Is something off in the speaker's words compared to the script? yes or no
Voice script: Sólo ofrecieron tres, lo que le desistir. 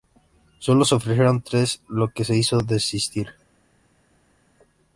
yes